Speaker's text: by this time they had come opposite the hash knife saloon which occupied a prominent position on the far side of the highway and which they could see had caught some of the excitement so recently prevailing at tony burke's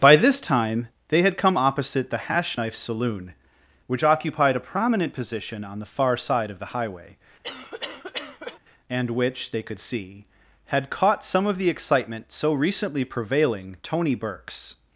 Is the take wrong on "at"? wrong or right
wrong